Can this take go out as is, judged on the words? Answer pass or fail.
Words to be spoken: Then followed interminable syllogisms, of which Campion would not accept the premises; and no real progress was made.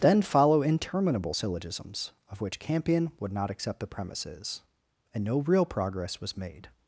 fail